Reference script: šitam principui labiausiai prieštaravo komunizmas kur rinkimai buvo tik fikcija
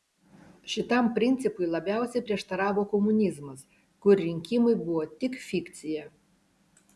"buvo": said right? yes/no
yes